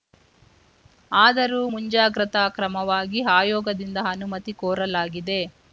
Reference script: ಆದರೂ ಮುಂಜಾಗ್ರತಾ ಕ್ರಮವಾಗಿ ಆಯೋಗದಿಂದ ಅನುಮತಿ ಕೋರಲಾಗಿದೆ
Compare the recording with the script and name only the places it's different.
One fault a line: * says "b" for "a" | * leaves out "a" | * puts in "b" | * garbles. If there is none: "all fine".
all fine